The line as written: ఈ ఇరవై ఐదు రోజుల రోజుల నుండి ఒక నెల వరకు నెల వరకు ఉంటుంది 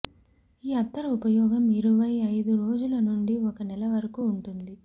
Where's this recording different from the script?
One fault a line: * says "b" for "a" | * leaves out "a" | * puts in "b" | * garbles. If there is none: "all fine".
* puts in "అత్తరు ఉపయోగం"
* leaves out "రోజుల"
* leaves out "నెల వరకు"